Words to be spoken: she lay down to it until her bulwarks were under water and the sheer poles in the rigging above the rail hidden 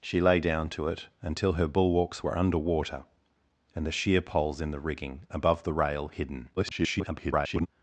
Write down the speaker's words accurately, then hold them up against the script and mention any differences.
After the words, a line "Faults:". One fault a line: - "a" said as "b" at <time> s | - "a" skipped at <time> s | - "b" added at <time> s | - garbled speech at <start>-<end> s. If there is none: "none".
she lay down to it until her bulwarks were under water and the sheer poles in the rigging above the rail hidden [garbled]
Faults:
- garbled speech at 6.6-7.7 s